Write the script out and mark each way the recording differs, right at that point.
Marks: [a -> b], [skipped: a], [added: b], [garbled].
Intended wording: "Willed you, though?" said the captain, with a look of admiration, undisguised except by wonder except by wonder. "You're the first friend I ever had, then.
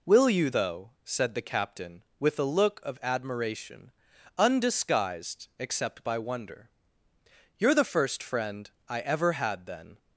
["Willed -> Will] you, though?" said the captain, with a look of admiration, undisguised except by wonder [skipped: except by wonder.] "You're the first friend I ever had, then.